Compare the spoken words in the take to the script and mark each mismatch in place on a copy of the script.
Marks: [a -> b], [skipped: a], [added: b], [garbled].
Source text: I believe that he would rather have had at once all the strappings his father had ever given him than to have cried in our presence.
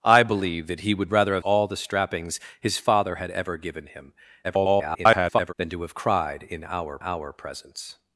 I believe that he would rather have [skipped: had at once] all the strappings his father had ever given him [garbled] than to have cried in our [added: our] presence.